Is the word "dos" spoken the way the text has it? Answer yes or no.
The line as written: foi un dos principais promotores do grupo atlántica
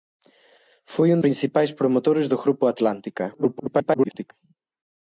no